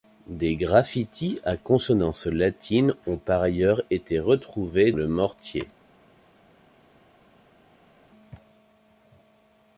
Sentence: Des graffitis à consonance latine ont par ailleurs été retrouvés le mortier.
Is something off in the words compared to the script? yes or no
no